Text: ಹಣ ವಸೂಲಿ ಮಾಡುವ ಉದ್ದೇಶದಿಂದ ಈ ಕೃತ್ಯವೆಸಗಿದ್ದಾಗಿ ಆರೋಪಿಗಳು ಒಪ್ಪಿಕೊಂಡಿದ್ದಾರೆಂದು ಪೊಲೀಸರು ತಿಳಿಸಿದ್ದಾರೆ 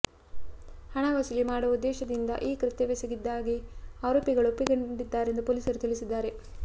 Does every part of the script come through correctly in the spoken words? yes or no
yes